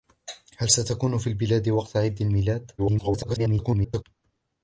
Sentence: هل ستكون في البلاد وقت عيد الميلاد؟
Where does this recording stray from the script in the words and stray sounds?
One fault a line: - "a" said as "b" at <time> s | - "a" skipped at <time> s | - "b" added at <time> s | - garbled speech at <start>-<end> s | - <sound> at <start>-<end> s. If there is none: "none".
- garbled speech at 2.8-4.0 s